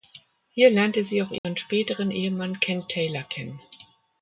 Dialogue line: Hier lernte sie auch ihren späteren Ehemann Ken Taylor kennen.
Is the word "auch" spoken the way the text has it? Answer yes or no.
yes